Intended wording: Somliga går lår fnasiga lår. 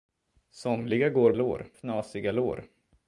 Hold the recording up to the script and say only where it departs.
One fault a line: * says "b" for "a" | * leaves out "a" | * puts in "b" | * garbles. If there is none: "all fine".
all fine